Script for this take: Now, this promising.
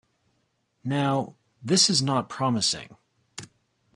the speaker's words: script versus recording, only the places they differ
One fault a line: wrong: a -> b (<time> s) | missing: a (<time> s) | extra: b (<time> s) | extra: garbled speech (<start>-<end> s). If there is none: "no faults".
extra: is not (1.9 s)